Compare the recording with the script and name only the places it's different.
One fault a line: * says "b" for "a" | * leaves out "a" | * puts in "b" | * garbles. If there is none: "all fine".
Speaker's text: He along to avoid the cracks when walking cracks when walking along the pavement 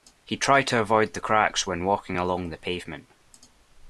* says "tried" for "along"
* leaves out "cracks when walking"